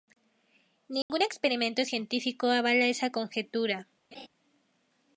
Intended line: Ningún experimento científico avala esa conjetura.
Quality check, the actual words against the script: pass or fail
pass